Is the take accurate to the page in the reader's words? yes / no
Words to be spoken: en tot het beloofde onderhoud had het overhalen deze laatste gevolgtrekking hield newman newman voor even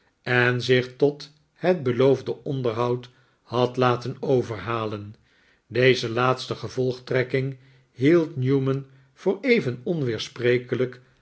no